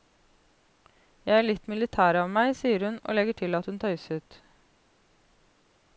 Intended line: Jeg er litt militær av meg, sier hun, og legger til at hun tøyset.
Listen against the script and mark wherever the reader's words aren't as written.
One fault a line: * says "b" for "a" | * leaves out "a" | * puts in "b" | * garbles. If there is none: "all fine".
all fine